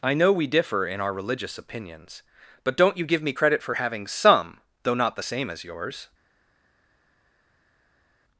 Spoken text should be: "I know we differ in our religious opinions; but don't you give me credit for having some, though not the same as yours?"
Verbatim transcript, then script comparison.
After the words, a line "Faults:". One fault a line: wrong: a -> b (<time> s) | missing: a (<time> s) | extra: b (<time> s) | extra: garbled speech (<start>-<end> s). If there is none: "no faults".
"I know we differ in our religious opinions; but don't you give me credit for having some, though not the same as yours?"
Faults:
no faults